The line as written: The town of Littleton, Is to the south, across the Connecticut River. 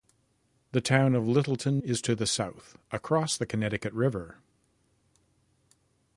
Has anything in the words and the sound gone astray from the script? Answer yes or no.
no